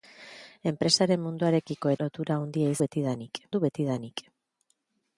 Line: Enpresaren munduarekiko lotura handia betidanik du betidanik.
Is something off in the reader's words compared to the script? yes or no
no